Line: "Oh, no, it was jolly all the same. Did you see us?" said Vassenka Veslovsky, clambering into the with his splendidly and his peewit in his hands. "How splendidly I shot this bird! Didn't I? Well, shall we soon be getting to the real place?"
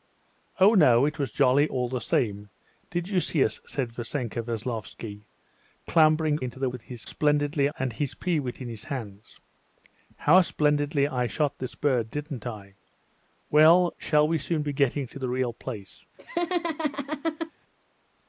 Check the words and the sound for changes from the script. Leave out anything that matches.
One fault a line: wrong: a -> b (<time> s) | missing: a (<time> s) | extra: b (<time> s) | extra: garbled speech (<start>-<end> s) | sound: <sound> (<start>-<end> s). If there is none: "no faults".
sound: laugh (16.2-17.5 s)